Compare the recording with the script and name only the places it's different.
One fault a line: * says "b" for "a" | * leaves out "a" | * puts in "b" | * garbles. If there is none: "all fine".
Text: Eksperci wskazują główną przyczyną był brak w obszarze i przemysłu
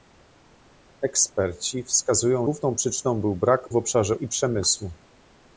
all fine